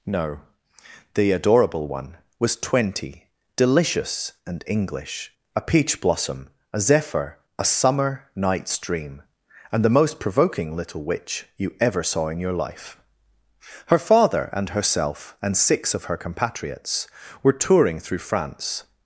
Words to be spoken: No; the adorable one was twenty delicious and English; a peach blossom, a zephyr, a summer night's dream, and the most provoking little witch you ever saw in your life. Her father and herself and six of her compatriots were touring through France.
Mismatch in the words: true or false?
false